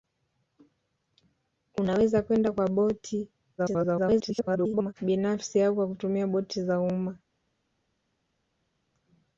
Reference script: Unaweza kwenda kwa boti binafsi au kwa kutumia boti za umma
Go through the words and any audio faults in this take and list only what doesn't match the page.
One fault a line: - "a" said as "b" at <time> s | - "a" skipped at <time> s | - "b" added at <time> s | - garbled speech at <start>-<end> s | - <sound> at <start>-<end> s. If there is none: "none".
- garbled speech at 3.6-4.9 s